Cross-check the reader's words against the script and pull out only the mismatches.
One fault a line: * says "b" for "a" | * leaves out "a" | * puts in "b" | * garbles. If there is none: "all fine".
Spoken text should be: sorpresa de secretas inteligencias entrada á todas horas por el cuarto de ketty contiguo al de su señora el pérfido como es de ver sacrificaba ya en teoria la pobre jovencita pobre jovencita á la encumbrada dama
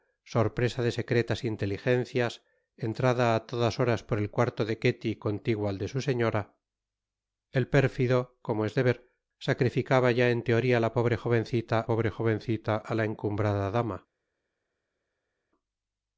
all fine